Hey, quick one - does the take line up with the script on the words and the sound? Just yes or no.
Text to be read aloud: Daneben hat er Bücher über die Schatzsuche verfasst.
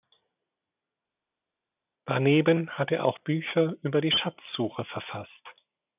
no